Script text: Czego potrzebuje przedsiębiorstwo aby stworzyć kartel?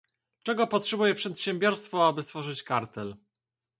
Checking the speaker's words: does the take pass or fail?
pass